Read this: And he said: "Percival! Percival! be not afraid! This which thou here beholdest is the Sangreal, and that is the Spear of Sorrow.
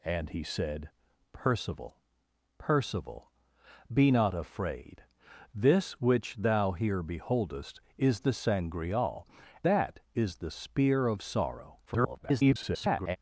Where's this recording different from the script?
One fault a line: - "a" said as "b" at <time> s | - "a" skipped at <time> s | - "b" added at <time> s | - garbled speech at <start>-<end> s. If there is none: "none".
- "and" skipped at 9.3 s
- garbled speech at 11.9-13.2 s